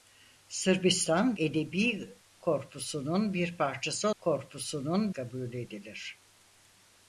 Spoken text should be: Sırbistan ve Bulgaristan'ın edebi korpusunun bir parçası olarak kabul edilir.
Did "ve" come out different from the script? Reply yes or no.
yes